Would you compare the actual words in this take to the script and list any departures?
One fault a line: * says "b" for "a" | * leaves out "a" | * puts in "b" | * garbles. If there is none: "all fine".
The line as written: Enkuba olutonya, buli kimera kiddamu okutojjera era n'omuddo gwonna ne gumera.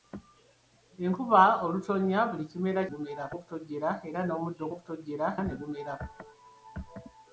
* says "gumera" for "kiddamu"
* says "okutojjera" for "gwonna"